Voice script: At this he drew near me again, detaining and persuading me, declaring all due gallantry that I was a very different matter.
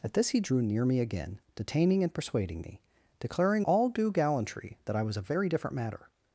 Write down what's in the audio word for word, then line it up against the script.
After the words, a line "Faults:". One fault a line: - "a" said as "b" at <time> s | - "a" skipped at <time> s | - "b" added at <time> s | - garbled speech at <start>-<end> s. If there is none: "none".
At this he drew near me again, detaining and persuading me, declaring all due gallantry that I was a very different matter.
Faults:
none